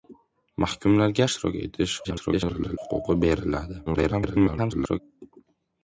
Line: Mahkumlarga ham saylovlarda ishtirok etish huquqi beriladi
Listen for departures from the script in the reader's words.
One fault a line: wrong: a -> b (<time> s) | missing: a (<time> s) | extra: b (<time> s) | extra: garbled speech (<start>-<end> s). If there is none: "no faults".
missing: ham saylovlarda (1.3 s)
extra: garbled speech (2.0-2.8 s)
extra: garbled speech (3.9-5.0 s)